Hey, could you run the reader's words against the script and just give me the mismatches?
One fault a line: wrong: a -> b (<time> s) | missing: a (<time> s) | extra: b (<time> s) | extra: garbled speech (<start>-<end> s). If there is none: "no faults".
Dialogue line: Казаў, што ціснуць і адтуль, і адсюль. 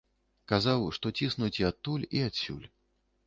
no faults